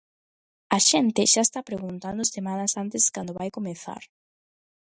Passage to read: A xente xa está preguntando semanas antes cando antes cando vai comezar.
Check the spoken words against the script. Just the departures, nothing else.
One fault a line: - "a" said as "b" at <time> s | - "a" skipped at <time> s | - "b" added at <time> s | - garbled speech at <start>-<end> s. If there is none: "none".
- "antes cando" skipped at 3.4 s